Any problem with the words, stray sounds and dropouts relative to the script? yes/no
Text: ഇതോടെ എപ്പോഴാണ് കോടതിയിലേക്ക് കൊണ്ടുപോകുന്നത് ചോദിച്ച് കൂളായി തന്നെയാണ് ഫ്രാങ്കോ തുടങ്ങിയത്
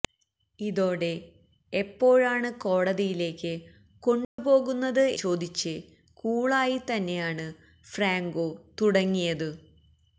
yes